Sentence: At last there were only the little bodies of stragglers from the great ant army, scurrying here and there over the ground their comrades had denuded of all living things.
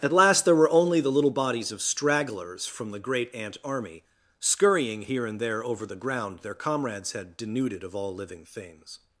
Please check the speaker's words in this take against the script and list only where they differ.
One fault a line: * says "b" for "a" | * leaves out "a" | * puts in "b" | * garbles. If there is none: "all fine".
all fine